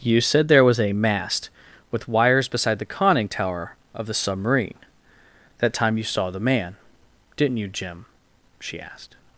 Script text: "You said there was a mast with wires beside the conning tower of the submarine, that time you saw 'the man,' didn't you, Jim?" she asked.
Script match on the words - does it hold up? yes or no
yes